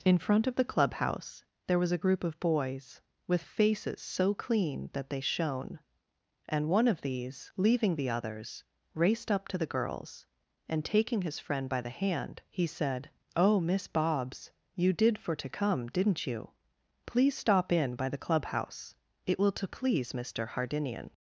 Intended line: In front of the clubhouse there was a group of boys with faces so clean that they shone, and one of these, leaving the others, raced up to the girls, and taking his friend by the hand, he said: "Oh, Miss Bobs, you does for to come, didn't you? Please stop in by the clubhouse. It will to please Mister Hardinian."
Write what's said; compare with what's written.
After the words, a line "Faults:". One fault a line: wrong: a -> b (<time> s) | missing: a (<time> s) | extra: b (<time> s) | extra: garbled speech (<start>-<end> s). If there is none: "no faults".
In front of the clubhouse there was a group of boys with faces so clean that they shone, and one of these, leaving the others, raced up to the girls, and taking his friend by the hand, he said: "Oh, Miss Bobs, you did for to come, didn't you? Please stop in by the clubhouse. It will to please Mister Hardinian."
Faults:
wrong: does -> did (14.9 s)